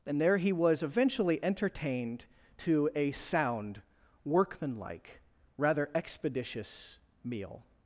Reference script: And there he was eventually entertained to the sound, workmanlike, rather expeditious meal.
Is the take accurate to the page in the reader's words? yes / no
no